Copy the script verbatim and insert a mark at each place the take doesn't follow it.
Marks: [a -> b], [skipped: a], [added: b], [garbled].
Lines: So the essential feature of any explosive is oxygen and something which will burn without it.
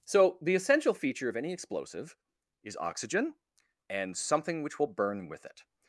So the essential feature of any explosive is oxygen and something which will burn [without -> with] it.